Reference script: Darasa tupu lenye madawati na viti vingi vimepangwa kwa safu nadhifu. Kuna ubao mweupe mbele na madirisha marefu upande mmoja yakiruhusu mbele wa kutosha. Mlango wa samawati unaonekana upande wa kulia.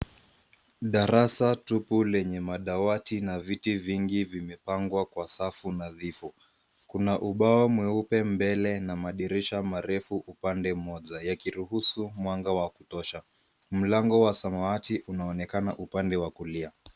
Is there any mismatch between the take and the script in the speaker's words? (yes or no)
yes